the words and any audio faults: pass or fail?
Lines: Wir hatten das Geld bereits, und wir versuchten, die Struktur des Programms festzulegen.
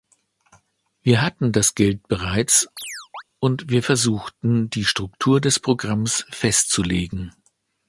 fail